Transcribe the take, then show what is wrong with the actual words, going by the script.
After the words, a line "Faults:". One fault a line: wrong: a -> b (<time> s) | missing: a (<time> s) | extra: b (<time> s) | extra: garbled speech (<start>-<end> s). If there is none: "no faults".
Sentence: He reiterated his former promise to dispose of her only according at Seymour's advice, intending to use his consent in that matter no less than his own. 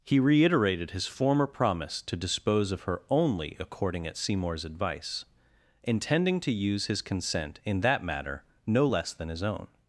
He reiterated his former promise to dispose of her only according at Seymour's advice, intending to use his consent in that matter no less than his own.
Faults:
no faults